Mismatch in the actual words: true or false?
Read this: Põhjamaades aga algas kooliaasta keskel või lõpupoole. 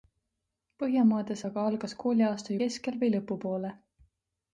false